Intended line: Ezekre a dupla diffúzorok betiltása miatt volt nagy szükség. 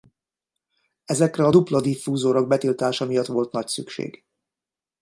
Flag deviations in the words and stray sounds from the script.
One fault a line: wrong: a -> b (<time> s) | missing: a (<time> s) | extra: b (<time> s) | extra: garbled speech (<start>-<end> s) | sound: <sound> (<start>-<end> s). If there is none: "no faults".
no faults